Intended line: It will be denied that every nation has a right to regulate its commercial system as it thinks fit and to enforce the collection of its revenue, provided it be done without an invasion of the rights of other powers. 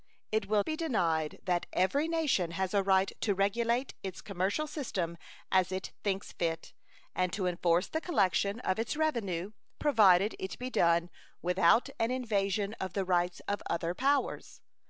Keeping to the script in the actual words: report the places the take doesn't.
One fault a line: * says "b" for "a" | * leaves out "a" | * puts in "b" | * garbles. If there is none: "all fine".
all fine